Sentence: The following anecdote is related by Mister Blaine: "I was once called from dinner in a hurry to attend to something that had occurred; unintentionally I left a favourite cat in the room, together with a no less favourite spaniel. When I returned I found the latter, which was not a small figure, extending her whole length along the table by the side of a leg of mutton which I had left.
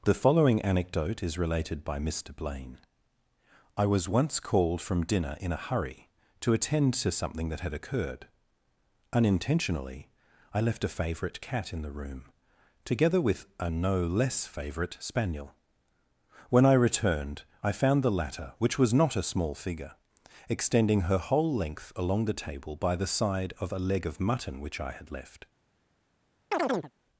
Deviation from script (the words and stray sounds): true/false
true